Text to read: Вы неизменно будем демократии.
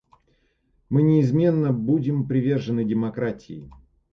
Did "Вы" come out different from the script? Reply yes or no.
yes